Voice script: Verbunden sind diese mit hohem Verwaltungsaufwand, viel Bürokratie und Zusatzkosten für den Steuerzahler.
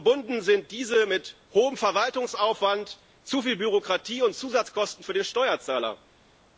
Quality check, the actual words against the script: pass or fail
fail